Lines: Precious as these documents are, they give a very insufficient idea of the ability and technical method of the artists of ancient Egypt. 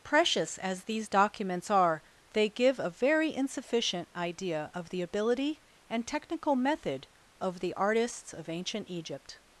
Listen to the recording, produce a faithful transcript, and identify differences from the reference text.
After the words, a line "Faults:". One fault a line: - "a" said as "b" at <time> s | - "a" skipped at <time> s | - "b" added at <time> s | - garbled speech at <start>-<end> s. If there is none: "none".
Precious as these documents are, they give a very insufficient idea of the ability and technical method of the artists of ancient Egypt.
Faults:
none